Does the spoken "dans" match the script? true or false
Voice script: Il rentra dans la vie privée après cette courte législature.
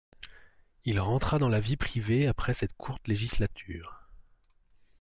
true